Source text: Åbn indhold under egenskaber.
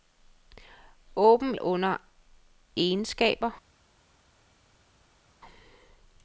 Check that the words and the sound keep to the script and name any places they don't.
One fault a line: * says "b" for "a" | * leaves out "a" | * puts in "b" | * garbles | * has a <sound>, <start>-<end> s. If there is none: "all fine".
* leaves out "indhold"